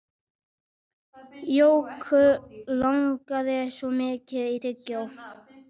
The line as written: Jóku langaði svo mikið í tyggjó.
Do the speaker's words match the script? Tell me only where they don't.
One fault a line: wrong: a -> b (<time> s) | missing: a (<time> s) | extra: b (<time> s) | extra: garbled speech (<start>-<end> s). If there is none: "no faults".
no faults